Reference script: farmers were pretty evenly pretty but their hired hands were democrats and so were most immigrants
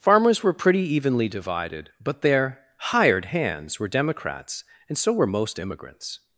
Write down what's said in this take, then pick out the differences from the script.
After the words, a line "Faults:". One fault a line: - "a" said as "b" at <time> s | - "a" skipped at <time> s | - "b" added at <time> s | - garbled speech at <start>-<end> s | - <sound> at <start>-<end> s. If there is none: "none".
farmers were pretty evenly divided but their hired hands were democrats and so were most immigrants
Faults:
- "pretty" said as "divided" at 1.3 s